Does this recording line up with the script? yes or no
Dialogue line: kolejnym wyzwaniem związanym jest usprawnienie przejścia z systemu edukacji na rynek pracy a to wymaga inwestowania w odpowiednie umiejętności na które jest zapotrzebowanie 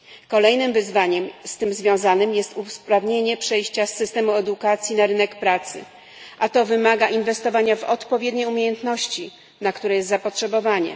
no